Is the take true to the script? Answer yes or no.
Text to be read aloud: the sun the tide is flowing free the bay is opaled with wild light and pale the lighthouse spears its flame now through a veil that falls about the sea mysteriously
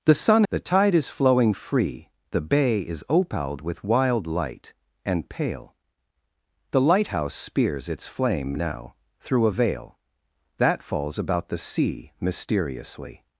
yes